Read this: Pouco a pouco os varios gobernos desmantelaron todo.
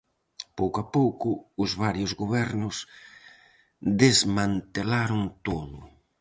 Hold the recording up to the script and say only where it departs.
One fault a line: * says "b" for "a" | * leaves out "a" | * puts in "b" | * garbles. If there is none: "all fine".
all fine